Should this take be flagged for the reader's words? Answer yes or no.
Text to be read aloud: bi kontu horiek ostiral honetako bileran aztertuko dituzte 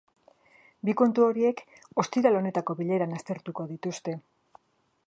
no